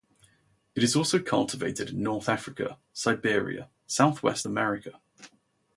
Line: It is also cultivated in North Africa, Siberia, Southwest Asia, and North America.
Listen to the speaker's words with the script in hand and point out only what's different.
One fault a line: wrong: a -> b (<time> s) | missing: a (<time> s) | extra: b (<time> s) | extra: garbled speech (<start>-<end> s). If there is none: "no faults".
missing: Asia and North (4.5 s)